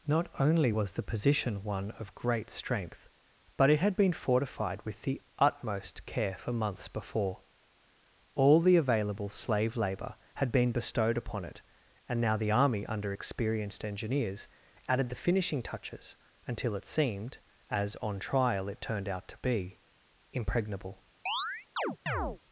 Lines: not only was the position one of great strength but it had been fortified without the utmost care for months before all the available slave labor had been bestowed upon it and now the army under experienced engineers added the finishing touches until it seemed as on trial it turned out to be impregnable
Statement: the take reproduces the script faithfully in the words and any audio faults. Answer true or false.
false